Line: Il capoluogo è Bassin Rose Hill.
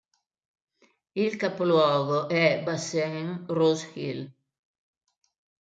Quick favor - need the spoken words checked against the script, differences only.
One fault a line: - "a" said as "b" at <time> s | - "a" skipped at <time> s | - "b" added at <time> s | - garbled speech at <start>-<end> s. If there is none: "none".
none